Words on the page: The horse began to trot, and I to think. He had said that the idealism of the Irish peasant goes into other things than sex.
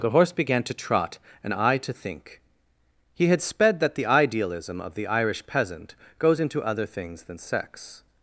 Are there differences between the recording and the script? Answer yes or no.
yes